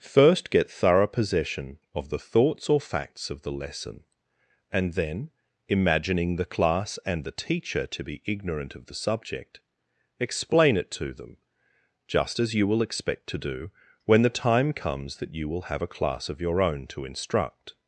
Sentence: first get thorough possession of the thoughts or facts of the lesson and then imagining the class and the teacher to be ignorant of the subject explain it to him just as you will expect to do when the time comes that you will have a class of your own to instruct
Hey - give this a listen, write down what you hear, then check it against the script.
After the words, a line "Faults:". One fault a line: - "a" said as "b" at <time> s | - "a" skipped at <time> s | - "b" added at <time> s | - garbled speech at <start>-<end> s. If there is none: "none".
first get thorough possession of the thoughts or facts of the lesson and then imagining the class and the teacher to be ignorant of the subject explain it to them just as you will expect to do when the time comes that you will have a class of your own to instruct
Faults:
- "him" said as "them" at 11.1 s